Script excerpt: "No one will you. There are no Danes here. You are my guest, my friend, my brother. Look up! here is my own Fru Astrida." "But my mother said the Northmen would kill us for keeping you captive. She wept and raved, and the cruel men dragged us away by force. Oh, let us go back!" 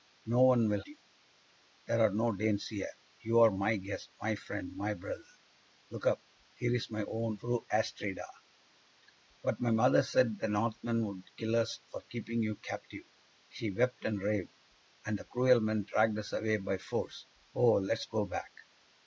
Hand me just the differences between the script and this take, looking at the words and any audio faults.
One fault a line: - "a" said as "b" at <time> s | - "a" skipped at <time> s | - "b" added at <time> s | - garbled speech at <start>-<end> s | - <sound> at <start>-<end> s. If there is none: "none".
none